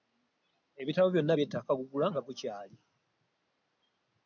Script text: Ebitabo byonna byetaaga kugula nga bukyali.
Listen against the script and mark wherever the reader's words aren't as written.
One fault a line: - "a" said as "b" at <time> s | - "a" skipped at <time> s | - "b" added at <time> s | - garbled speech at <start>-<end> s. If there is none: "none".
none